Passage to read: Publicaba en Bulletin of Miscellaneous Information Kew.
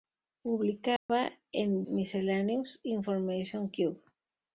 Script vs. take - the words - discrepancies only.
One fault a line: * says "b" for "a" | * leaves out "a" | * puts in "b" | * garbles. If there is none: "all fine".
* leaves out "Bulletin of"